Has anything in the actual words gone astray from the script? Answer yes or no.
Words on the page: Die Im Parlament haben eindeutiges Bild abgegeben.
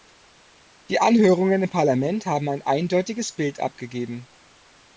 yes